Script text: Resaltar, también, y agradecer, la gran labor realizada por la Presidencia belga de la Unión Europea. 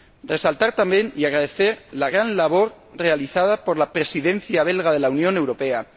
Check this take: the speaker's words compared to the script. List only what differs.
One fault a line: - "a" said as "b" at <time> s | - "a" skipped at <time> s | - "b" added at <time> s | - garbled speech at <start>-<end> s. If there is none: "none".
none